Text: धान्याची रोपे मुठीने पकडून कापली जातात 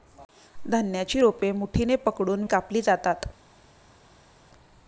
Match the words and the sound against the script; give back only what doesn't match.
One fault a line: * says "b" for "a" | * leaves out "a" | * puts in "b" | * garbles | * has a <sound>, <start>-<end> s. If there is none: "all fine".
all fine